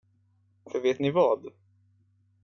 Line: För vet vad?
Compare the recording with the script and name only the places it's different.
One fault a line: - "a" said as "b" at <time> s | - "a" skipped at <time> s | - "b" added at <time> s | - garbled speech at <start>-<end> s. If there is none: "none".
- "ni" added at 1.0 s